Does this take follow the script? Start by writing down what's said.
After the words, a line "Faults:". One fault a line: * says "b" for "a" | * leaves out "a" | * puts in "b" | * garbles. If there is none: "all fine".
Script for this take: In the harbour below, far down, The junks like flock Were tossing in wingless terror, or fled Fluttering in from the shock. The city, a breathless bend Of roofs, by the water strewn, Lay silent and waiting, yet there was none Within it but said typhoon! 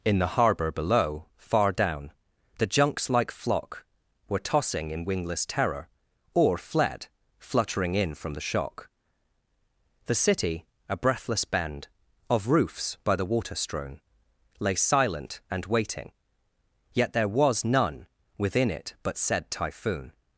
In the harbour below, far down, The junks like flock Were tossing in wingless terror, or fled Fluttering in from the shock. The city, a breathless bend Of roofs, by the water strewn, Lay silent and waiting, yet there was none Within it but said typhoon!
Faults:
all fine